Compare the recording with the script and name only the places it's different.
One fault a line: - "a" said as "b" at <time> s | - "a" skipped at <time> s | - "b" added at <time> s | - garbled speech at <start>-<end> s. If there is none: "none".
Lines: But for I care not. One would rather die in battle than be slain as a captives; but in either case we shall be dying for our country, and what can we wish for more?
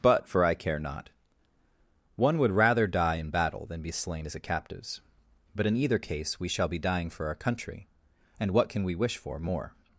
none